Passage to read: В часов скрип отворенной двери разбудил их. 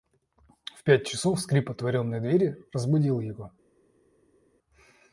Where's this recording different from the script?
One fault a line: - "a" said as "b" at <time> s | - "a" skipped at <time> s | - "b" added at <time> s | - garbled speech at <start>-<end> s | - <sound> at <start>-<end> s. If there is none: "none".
- "пять" added at 0.8 s
- "их" said as "его" at 3.2 s